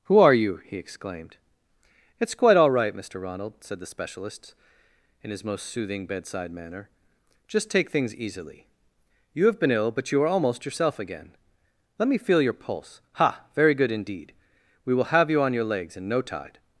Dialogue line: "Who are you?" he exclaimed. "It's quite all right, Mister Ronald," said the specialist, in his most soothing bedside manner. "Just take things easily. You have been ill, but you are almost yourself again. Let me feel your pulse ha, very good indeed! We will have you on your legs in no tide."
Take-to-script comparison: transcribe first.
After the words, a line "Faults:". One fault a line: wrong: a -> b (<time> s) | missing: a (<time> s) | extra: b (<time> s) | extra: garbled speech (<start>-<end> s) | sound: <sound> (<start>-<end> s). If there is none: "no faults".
"Who are you?" he exclaimed. "It's quite all right, Mister Ronald," said the specialist, in his most soothing bedside manner. "Just take things easily. You have been ill, but you are almost yourself again. Let me feel your pulse ha, very good indeed! We will have you on your legs in no tide."
Faults:
no faults